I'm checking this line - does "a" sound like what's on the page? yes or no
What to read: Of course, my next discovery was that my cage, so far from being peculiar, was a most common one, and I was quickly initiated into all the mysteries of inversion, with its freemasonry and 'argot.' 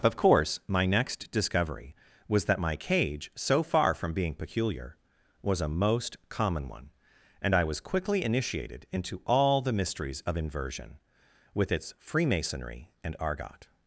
yes